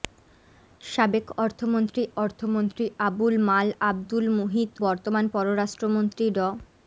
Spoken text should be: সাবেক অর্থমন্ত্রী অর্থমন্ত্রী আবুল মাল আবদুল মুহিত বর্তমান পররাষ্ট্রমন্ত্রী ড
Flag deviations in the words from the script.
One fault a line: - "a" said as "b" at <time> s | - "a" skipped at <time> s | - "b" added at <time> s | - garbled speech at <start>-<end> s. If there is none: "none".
none